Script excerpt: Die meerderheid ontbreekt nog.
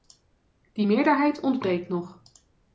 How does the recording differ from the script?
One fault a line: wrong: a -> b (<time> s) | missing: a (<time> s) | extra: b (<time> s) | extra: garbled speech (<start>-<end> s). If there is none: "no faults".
no faults